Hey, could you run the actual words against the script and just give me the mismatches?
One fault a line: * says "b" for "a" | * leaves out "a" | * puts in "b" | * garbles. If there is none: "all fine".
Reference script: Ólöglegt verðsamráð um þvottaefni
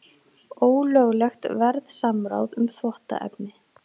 all fine